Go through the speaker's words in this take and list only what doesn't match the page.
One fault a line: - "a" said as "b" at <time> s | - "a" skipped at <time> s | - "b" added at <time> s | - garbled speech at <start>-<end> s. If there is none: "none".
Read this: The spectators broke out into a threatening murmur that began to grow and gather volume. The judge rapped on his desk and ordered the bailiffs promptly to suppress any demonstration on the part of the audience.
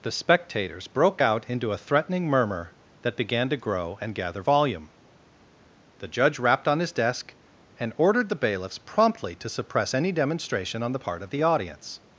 none